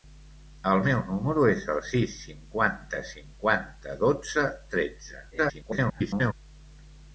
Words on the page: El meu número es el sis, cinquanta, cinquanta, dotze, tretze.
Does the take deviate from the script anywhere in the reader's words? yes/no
yes